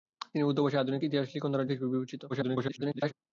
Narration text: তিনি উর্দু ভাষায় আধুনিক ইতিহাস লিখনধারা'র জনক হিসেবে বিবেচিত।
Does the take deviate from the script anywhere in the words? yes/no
yes